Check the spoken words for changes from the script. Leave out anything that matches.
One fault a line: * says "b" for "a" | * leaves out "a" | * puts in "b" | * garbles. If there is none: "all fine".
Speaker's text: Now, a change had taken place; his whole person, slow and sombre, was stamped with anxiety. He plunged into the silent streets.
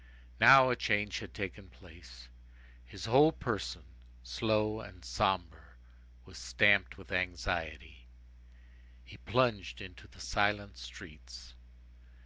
all fine